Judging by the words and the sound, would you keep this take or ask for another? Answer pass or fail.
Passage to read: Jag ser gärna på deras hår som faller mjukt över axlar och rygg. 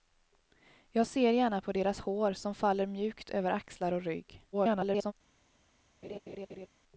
fail